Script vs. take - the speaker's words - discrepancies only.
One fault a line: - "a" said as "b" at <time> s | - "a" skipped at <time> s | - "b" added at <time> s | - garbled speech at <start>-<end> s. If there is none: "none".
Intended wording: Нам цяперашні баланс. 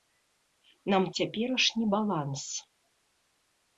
none